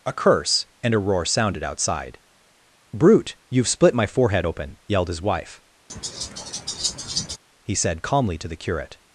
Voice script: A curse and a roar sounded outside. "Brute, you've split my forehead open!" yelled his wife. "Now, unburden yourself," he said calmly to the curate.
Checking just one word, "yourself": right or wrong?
wrong